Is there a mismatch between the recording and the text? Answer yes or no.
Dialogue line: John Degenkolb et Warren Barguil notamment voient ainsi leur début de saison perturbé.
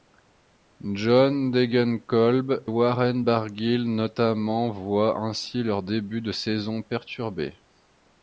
yes